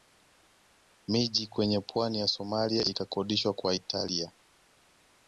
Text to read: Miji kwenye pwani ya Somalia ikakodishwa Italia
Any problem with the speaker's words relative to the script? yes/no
yes